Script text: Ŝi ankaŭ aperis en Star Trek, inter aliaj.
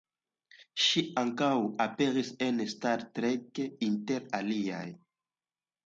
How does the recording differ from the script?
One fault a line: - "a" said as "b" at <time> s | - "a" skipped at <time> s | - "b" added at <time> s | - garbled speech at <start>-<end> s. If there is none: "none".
none